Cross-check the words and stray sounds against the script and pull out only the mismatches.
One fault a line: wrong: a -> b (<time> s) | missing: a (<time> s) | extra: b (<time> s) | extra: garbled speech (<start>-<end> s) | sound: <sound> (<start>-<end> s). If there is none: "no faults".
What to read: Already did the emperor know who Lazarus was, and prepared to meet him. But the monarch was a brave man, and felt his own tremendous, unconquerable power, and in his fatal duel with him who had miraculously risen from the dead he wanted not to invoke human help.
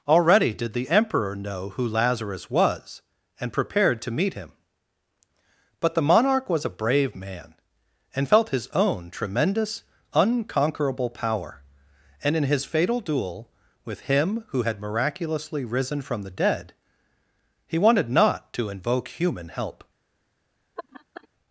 sound: laugh (20.8-21.3 s)